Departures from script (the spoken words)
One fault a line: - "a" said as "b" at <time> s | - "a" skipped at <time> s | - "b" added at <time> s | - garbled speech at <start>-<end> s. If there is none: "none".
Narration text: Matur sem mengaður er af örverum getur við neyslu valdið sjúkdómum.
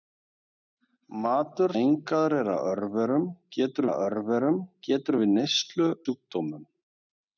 - "sem" skipped at 1.7 s
- "af örverum getur" added at 3.9 s
- "valdið" skipped at 5.9 s